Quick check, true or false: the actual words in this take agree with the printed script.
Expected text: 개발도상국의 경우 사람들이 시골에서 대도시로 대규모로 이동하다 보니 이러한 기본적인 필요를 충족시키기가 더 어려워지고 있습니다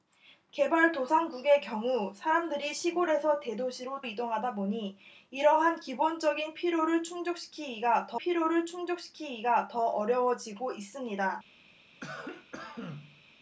false